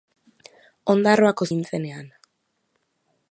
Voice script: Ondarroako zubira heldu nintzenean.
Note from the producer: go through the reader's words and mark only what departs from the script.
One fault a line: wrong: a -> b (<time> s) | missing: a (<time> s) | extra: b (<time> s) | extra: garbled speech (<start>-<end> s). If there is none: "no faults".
missing: zubira heldu (1.5 s)